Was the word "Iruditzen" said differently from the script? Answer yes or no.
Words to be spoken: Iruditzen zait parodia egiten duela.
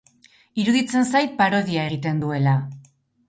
no